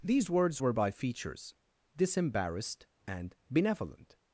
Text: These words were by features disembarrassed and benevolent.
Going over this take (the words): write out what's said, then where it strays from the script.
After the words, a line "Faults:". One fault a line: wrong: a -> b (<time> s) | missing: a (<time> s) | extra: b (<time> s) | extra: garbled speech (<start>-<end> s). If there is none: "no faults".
These words were by features disembarrassed and benevolent.
Faults:
no faults